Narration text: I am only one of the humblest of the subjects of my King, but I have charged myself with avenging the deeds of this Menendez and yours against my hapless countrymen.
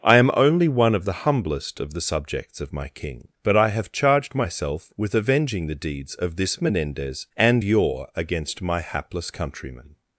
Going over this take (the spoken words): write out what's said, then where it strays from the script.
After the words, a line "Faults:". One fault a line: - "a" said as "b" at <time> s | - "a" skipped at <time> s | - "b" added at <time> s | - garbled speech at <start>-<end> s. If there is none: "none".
I am only one of the humblest of the subjects of my King, but I have charged myself with avenging the deeds of this Menendez and your against my hapless countrymen.
Faults:
- "yours" said as "your" at 7.6 s